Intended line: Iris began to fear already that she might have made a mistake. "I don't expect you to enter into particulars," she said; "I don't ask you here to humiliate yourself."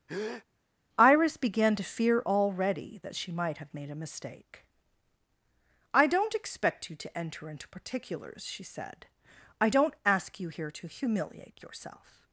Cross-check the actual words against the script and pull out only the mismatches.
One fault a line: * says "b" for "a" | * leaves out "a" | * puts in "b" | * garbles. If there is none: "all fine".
all fine